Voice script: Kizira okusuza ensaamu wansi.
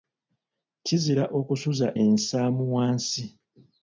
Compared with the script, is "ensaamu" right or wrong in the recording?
right